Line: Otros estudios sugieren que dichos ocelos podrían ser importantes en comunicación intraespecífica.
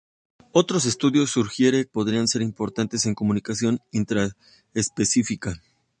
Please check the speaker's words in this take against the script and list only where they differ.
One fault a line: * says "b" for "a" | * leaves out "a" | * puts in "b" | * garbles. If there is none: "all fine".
* leaves out "que dichos ocelos"